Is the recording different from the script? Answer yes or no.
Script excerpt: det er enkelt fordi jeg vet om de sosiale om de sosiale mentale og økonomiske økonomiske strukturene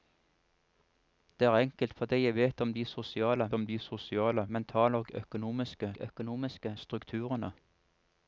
no